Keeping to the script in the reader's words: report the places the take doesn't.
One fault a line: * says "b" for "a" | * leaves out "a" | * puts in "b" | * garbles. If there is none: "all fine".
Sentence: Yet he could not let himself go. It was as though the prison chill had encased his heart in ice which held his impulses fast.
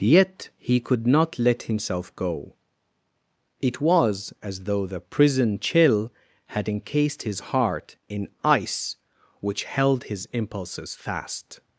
all fine